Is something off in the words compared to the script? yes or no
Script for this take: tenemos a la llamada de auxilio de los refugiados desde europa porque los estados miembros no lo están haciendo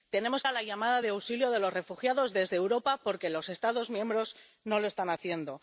no